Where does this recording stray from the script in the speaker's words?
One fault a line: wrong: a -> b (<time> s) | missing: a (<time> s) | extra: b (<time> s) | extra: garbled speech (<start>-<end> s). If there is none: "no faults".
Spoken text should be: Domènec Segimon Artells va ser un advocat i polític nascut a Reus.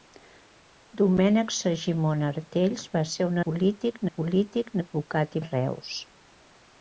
wrong: advocat -> polític (3.4 s)
wrong: nascut -> advocat (4.8 s)